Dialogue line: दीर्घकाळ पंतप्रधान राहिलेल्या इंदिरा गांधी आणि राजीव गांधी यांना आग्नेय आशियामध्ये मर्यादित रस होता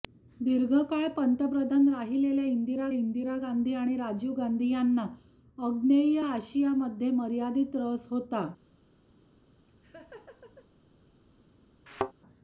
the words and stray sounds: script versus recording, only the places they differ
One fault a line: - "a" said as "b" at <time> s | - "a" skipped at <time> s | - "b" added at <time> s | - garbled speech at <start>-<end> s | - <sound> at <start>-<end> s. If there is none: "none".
- "इंदिरा" added at 2.9 s
- laugh at 9.7-10.7 s
- thud at 11.9-12.1 s